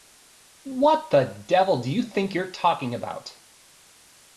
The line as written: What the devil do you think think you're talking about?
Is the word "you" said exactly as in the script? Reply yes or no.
yes